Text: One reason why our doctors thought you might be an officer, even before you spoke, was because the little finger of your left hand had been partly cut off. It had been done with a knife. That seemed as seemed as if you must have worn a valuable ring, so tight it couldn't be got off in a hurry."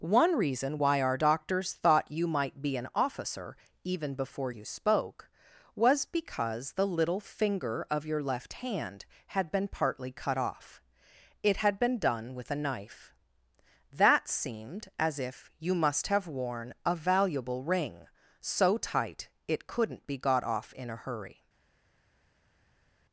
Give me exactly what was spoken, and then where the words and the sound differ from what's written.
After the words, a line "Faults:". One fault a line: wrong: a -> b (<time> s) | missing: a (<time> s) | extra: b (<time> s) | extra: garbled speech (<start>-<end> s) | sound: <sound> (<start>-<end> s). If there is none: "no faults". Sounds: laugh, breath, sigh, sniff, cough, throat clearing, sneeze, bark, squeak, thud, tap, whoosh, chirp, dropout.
One reason why our doctors thought you might be an officer, even before you spoke, was because the little finger of your left hand had been partly cut off. It had been done with a knife. That seemed as if you must have worn a valuable ring, so tight it couldn't be got off in a hurry."
Faults:
missing: seemed as (15.2 s)